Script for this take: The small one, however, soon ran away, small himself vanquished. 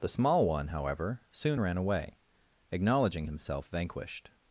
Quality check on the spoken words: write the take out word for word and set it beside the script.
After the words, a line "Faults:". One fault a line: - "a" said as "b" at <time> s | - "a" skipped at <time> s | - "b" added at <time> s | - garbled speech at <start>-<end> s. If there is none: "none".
The small one, however, soon ran away, acknowledging himself vanquished.
Faults:
- "small" said as "acknowledging" at 2.7 s